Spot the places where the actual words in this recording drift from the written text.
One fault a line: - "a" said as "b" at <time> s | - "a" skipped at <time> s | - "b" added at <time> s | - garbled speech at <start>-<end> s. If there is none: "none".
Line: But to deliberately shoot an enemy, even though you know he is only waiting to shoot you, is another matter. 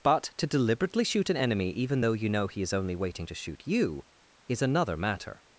none